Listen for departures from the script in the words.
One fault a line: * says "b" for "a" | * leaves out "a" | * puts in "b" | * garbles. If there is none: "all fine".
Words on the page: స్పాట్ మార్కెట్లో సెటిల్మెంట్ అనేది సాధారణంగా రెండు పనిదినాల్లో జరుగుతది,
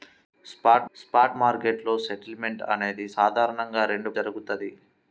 * puts in "స్పాట్"
* leaves out "పనిదినాల్లో"